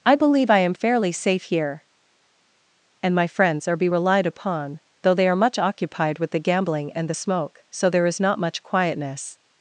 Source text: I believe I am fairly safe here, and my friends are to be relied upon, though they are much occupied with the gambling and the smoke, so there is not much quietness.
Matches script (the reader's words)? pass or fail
fail